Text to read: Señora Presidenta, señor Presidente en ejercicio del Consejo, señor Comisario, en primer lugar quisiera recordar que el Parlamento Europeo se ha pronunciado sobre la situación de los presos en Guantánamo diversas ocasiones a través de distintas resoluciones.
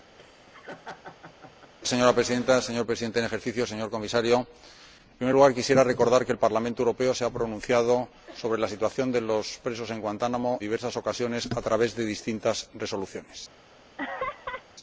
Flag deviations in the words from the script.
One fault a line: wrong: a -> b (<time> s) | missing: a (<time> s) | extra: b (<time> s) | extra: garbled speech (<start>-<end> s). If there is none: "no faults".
no faults